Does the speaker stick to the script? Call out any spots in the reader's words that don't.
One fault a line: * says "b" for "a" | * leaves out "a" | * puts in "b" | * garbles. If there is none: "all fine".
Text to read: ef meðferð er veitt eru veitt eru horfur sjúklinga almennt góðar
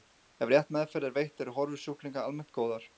* puts in "rétt"
* leaves out "veitt eru"